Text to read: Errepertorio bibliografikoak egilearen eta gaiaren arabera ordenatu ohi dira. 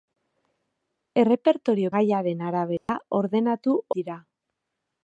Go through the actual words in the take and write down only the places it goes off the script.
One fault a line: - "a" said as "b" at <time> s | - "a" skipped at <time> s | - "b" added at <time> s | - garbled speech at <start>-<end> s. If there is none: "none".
- "bibliografikoak egilearen eta" skipped at 1.9 s
- "ohi" skipped at 3.8 s